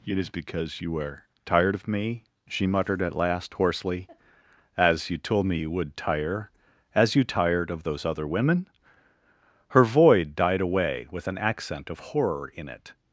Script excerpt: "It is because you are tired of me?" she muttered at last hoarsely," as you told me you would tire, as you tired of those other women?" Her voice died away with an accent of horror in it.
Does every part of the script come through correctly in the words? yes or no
no